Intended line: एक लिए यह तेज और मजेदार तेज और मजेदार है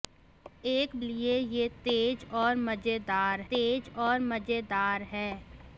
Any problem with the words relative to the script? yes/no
no